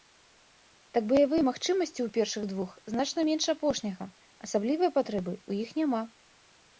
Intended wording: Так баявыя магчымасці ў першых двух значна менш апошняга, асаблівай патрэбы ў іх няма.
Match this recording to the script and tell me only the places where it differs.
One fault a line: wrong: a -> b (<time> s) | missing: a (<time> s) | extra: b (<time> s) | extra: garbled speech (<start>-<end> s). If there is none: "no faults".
no faults